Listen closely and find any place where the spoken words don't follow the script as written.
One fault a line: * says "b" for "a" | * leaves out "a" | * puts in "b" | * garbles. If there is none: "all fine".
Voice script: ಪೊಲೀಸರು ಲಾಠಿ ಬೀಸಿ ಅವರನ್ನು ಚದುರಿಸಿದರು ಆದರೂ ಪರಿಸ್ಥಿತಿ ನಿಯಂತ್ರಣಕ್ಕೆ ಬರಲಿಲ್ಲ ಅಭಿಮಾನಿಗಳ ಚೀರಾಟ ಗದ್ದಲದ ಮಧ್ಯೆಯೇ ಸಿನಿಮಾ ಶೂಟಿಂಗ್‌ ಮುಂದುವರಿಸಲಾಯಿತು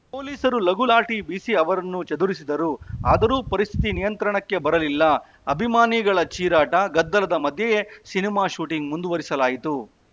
* puts in "ಲಘು"